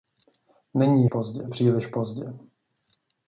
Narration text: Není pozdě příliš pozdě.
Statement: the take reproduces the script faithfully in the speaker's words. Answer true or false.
true